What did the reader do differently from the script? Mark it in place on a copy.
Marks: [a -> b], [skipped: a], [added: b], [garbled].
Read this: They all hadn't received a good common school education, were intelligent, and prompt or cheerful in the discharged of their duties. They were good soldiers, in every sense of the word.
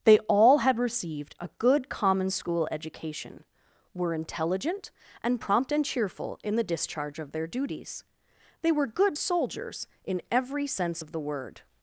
They all [hadn't -> had] received a good common school education, were intelligent, and prompt [or -> and] cheerful in the [discharged -> discharge] of their duties. They were good soldiers, in every sense of the word.